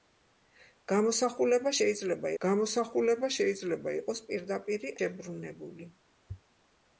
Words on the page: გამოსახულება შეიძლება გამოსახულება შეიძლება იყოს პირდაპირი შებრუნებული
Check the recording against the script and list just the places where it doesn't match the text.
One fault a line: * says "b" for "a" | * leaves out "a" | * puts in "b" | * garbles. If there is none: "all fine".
all fine